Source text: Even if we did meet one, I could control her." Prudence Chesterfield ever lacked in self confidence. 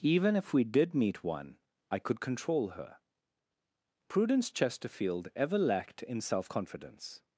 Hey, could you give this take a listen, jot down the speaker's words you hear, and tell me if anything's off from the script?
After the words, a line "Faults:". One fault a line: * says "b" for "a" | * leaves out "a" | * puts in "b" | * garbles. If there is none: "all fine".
Even if we did meet one, I could control her." Prudence Chesterfield ever lacked in self confidence.
Faults:
all fine